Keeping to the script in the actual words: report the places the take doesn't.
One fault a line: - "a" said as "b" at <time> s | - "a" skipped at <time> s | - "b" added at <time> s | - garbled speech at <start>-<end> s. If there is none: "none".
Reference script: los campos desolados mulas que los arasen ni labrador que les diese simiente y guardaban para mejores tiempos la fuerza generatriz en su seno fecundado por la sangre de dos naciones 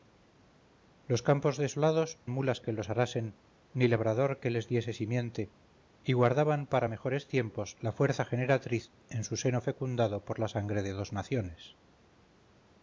none